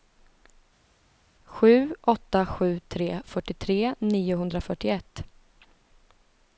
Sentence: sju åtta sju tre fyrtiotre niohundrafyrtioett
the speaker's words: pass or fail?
pass